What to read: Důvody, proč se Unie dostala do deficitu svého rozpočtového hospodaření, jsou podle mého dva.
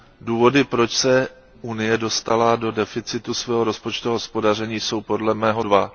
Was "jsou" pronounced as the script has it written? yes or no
yes